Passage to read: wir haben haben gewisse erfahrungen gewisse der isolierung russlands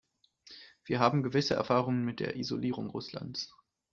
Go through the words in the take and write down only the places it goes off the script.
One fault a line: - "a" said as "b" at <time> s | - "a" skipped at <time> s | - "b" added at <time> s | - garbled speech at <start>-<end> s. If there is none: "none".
- "haben" skipped at 1.2 s
- "gewisse" said as "mit" at 2.0 s